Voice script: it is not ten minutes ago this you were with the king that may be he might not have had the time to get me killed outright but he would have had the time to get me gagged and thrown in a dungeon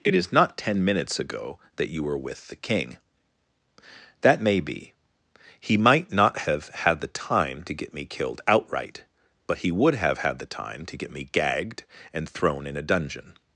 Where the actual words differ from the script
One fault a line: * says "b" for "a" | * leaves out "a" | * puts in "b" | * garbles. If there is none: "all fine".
* says "that" for "this"